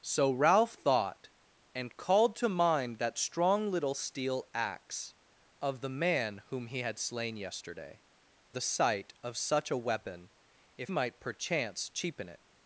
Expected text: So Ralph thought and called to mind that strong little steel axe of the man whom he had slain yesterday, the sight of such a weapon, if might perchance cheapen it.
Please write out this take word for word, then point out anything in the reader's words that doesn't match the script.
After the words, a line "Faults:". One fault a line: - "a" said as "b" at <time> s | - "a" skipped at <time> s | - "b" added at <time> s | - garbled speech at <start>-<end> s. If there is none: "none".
So Ralph thought and called to mind that strong little steel axe of the man whom he had slain yesterday, the sight of such a weapon, if might perchance cheapen it.
Faults:
none